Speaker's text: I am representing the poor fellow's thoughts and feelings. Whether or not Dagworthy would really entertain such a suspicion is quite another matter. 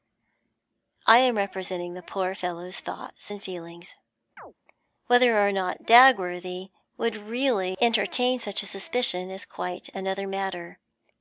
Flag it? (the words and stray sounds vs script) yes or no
yes